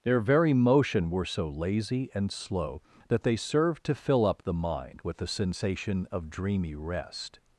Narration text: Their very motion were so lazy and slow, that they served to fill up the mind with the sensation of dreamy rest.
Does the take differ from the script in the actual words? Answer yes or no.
no